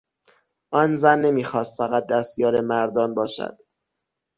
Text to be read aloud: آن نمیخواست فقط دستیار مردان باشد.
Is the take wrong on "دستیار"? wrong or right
right